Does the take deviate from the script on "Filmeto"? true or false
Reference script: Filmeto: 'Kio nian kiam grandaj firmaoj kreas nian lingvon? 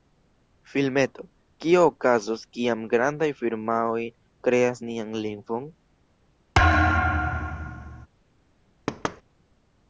false